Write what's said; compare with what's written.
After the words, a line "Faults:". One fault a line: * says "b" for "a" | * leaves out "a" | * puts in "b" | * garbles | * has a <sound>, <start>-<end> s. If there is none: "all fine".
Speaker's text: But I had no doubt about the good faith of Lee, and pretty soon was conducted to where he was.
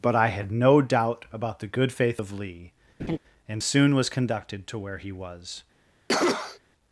But I had no doubt about the good faith of Lee, and soon was conducted to where he was.
Faults:
* has a laugh, 3.0-3.2 s
* leaves out "pretty"
* has a cough, 6.1-6.6 s